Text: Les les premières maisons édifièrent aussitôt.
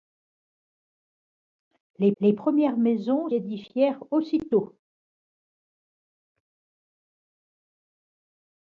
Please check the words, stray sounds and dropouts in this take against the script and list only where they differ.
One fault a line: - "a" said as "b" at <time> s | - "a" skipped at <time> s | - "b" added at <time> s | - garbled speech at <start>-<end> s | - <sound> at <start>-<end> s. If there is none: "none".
none